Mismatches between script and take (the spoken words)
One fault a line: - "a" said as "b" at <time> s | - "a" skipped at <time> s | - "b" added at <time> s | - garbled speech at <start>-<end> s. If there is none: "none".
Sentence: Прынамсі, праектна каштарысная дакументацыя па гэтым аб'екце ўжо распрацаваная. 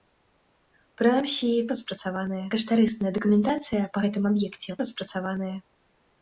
- "праектна" said as "распрацаваная" at 1.8 s
- "ўжо" skipped at 4.8 s